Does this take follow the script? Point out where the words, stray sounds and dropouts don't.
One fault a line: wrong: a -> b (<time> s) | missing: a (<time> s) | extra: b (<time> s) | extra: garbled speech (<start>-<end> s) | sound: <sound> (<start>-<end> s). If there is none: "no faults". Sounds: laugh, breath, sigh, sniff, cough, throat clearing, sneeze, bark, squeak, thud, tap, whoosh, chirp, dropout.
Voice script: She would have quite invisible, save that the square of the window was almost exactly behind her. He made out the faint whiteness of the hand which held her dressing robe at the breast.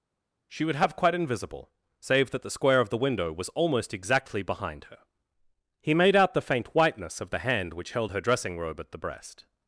no faults